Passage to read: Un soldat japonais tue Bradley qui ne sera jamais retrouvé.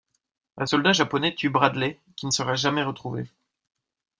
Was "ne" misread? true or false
false